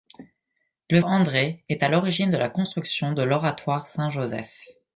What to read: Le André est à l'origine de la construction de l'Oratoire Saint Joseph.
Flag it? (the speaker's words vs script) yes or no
no